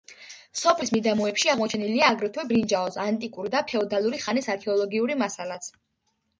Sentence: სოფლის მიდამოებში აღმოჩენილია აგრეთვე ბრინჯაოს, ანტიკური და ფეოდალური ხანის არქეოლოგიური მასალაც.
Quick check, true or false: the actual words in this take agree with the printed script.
true